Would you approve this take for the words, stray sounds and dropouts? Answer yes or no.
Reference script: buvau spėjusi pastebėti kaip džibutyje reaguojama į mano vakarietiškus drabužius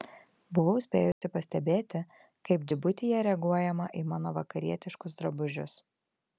no